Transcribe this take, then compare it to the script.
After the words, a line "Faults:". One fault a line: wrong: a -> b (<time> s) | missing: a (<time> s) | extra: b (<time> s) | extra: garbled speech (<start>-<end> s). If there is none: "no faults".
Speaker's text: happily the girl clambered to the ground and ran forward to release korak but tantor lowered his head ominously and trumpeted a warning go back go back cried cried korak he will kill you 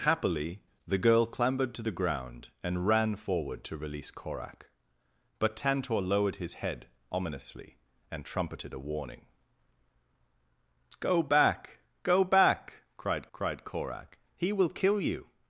happily the girl clambered to the ground and ran forward to release korak but tantor lowered his head ominously and trumpeted a warning go back go back cried cried korak he will kill you
Faults:
no faults